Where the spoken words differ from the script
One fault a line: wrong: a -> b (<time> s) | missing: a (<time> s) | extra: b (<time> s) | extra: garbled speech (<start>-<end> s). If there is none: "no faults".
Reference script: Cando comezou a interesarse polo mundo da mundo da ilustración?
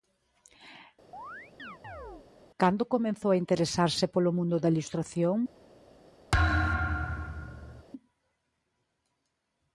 missing: mundo da (4.7 s)